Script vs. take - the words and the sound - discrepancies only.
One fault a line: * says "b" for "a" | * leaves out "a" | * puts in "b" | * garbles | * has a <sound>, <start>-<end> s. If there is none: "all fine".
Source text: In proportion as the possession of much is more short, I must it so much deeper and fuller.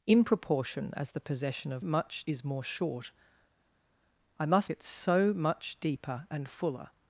all fine